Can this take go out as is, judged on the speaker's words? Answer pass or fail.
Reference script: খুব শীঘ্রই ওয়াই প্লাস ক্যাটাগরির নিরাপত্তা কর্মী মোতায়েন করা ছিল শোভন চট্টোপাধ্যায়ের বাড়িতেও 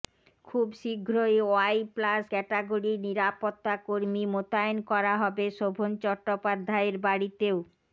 fail